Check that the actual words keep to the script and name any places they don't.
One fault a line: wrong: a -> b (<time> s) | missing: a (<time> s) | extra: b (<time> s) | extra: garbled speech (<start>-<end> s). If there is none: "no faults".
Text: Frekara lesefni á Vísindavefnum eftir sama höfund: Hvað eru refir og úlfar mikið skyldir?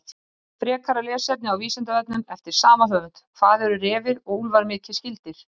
no faults